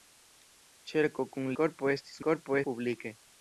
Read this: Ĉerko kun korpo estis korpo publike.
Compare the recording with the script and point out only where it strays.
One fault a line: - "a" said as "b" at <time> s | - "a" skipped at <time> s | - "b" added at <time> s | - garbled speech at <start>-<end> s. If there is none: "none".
none